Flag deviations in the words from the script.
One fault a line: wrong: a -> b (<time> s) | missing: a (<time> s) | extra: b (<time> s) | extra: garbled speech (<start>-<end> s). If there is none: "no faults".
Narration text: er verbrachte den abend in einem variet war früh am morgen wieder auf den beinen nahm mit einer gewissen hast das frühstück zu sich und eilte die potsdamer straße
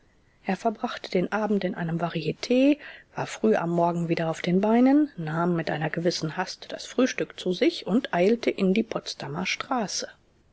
extra: in (8.5 s)